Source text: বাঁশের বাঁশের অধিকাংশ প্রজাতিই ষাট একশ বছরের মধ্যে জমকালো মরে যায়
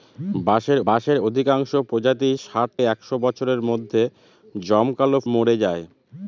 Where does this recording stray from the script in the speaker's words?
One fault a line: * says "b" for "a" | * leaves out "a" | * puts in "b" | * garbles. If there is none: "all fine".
all fine